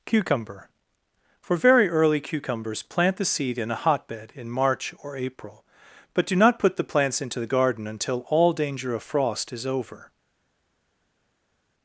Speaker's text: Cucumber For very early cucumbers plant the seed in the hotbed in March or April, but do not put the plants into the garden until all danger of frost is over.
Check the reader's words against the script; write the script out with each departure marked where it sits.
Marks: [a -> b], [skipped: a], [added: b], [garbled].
Cucumber For very early cucumbers plant the seed in [the -> a] hotbed in March or April, but do not put the plants into the garden until all danger of frost is over.